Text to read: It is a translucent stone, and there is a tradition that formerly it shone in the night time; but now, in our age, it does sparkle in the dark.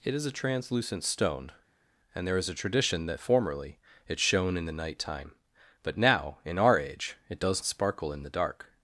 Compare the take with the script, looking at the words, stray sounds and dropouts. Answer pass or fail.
pass